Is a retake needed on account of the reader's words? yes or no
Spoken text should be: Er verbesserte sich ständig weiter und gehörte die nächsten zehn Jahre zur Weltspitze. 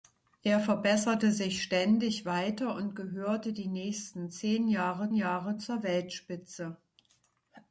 yes